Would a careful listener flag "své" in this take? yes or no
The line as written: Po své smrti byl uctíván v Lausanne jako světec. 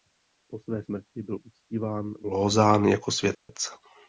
no